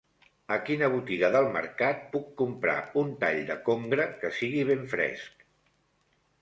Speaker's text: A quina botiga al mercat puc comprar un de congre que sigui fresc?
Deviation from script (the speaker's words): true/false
true